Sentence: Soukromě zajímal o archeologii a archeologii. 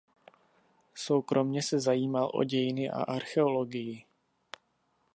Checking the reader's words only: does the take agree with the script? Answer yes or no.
no